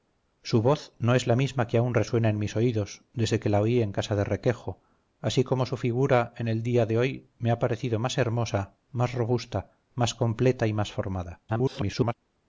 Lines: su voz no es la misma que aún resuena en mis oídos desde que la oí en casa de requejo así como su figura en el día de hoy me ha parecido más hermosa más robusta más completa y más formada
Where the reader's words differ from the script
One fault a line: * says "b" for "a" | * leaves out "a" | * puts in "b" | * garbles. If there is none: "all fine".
* garbles